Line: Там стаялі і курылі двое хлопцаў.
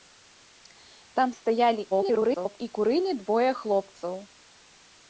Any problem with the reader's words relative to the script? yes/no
yes